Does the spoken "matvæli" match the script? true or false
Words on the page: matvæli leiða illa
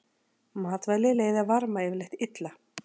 true